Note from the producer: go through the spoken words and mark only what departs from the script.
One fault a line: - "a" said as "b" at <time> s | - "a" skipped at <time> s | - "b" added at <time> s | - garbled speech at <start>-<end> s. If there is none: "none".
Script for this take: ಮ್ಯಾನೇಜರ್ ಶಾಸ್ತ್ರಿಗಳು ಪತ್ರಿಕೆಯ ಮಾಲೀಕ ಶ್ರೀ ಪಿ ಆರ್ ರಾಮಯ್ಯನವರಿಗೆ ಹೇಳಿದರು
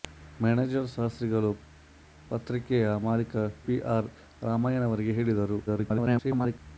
- "ಶ್ರೀ" skipped at 3.4 s
- garbled speech at 5.7-6.6 s